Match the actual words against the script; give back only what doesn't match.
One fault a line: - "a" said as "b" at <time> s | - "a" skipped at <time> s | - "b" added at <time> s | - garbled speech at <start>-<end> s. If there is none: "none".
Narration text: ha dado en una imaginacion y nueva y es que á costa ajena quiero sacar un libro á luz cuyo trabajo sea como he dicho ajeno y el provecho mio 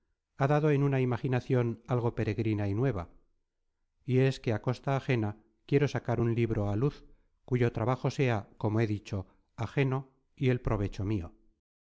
- "algo peregrina" added at 1.9 s